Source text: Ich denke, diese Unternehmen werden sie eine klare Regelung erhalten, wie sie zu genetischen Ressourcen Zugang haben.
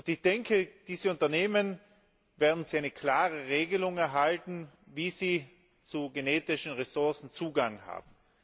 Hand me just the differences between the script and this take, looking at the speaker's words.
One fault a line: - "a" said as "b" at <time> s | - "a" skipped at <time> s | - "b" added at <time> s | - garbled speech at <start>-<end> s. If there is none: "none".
none